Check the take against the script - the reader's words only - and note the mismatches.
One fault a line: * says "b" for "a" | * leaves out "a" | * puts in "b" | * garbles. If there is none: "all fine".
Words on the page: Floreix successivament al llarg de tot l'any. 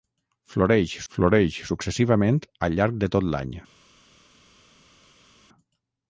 * puts in "floreix"